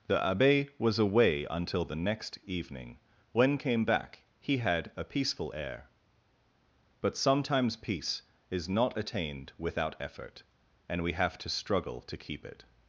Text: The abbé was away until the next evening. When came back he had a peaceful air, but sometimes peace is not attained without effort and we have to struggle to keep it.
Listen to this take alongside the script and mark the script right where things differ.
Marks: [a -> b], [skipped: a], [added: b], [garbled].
The abbé was away until the next evening. When came back he had a peaceful air, but sometimes peace is not attained without effort and we have to struggle to keep it.